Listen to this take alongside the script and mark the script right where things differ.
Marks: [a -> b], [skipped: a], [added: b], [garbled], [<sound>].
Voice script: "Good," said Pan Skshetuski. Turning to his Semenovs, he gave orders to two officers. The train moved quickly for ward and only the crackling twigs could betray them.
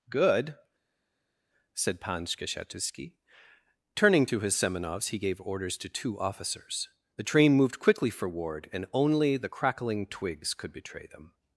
"Good," said Pan Skshetuski. Turning to his Semenovs, he gave orders to two officers. The train moved quickly for ward and only the crackling twigs could betray them.